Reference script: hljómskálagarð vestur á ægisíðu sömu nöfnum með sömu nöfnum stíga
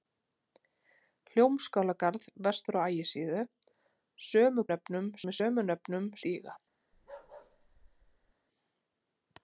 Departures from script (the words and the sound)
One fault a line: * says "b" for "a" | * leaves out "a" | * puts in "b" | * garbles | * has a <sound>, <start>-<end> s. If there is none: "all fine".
* has a bark, 6.9-8.3 s